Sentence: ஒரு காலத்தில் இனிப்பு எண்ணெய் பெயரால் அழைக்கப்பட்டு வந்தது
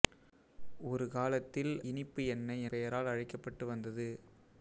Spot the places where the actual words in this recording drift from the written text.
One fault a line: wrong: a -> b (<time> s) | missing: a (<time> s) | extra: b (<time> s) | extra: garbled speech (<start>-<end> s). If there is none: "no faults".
no faults